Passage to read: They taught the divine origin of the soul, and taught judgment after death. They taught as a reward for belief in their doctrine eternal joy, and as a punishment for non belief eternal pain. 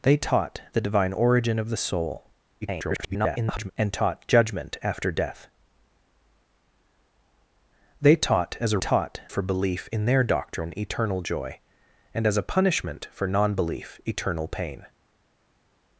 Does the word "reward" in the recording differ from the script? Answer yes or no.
yes